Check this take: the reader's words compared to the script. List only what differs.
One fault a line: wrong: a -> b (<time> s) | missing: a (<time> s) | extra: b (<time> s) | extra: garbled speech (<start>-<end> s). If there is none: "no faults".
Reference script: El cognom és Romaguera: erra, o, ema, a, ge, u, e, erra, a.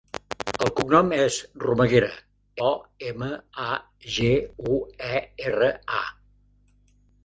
missing: erra (2.1 s)